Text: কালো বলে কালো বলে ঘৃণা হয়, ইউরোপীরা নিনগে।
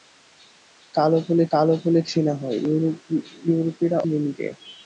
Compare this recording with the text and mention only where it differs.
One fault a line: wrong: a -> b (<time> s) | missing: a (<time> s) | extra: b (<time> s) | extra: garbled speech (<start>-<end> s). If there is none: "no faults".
no faults